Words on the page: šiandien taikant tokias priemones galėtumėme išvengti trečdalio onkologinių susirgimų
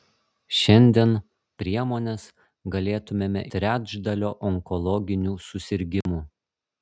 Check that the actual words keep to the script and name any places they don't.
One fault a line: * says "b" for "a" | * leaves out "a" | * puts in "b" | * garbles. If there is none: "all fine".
* leaves out "taikant tokias"
* leaves out "išvengti"